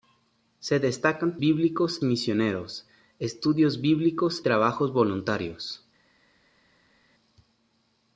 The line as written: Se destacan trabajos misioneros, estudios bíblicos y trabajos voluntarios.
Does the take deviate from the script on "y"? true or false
true